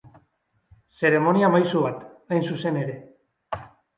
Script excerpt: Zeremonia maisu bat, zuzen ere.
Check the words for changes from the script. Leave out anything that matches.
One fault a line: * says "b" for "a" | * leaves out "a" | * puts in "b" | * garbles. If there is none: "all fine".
* puts in "hain"